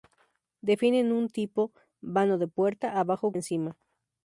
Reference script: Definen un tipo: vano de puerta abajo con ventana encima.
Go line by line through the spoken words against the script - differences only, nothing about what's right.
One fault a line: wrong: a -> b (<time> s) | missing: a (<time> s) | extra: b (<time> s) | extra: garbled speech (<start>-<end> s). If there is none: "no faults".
missing: con ventana (3.3 s)